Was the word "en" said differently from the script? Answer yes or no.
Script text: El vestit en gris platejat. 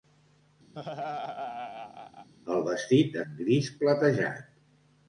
no